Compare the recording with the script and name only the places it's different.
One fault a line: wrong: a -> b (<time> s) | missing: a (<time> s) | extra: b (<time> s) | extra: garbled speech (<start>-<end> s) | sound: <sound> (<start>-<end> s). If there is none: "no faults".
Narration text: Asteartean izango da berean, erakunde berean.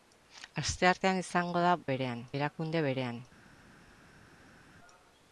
no faults